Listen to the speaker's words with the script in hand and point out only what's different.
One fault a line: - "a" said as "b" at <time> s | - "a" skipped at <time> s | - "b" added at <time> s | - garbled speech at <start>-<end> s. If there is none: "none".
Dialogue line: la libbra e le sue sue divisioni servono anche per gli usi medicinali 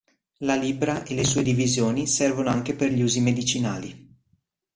- "sue" skipped at 1.4 s